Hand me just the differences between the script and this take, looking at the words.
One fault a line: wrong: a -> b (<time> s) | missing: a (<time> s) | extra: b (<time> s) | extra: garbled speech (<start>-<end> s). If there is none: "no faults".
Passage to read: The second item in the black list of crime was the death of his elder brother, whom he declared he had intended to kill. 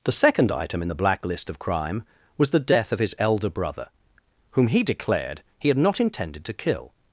extra: not (5.8 s)